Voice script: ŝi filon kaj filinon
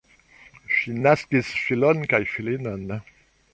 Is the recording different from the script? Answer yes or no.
yes